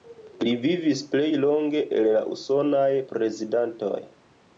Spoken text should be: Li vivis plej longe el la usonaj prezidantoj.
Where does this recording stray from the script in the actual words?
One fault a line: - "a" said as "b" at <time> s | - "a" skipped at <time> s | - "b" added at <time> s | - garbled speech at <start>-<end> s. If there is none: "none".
none